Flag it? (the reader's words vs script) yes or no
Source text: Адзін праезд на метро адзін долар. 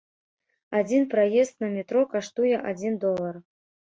yes